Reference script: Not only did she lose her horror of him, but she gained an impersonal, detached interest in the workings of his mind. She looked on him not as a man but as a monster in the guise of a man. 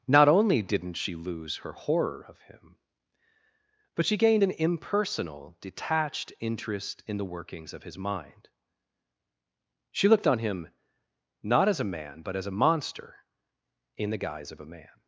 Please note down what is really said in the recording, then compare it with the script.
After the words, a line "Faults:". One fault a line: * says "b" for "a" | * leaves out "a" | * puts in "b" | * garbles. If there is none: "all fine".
Not only didn't she lose her horror of him, but she gained an impersonal, detached interest in the workings of his mind. She looked on him not as a man but as a monster in the guise of a man.
Faults:
* says "didn't" for "did"